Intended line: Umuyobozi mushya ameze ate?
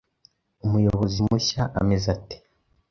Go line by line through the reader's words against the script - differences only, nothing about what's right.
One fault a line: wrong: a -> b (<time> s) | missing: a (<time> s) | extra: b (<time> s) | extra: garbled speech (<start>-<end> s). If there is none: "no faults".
no faults